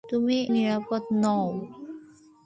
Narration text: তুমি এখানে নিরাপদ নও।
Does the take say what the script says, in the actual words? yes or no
no